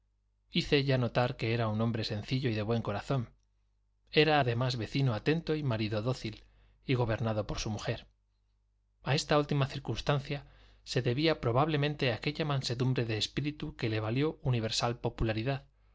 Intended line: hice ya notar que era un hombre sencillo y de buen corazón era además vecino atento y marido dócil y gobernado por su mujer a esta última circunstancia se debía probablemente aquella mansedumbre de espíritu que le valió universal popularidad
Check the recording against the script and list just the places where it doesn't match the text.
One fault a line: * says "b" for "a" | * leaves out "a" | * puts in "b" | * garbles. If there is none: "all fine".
all fine